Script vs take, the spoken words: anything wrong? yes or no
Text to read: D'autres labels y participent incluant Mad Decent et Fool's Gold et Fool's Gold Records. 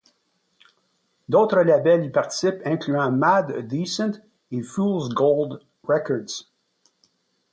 yes